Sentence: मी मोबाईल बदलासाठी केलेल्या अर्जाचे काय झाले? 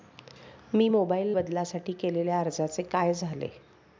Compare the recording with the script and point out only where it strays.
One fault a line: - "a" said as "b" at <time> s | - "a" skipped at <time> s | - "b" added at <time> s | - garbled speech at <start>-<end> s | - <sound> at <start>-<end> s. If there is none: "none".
none